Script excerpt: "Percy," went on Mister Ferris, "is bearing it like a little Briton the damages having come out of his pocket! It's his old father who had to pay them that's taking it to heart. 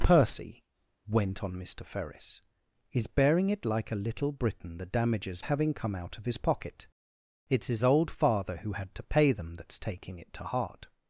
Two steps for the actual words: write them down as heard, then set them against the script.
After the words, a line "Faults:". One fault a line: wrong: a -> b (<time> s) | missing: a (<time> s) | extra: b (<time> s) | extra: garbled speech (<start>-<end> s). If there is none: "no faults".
"Percy," went on Mister Ferris, "is bearing it like a little Briton the damages having come out of his pocket! It's his old father who had to pay them that's taking it to heart.
Faults:
no faults